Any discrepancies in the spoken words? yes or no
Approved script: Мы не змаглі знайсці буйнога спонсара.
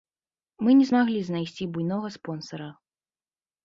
no